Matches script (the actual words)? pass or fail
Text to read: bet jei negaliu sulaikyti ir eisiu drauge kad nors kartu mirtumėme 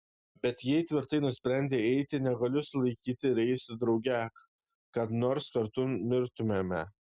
fail